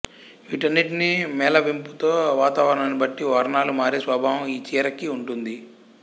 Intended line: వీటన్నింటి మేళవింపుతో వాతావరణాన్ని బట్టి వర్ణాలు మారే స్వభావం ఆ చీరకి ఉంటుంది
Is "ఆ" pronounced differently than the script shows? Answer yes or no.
yes